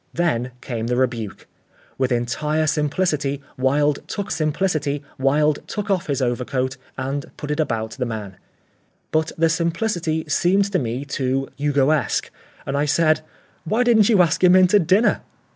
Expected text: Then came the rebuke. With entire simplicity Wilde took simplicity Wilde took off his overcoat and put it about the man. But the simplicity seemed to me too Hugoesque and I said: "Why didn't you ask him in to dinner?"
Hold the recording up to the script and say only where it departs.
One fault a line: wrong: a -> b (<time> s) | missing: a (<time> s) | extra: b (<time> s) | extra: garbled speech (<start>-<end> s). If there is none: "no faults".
no faults